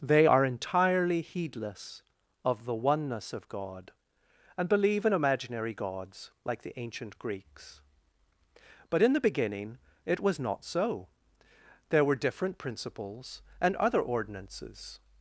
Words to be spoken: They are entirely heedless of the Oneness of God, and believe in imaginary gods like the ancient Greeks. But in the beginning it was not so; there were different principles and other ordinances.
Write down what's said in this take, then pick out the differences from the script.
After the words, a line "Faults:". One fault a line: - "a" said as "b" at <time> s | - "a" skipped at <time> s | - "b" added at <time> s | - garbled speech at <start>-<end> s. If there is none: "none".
They are entirely heedless of the Oneness of God, and believe in imaginary gods like the ancient Greeks. But in the beginning it was not so; there were different principles and other ordinances.
Faults:
none